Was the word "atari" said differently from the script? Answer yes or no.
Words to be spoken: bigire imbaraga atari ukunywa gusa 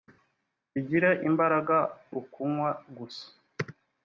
yes